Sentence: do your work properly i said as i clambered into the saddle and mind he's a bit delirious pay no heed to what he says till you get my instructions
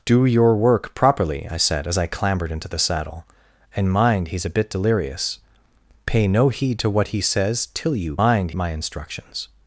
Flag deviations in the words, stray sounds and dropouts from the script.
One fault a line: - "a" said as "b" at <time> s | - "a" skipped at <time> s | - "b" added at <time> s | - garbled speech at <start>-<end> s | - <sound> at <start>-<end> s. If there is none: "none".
- "get" said as "mind" at 8.1 s